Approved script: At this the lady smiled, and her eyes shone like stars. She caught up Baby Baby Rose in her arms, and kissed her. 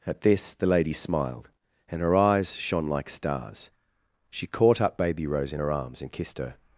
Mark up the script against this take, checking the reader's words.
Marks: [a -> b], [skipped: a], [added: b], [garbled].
At this the lady smiled, and her eyes shone like stars. She caught up Baby [skipped: Baby] Rose in her arms, and kissed her.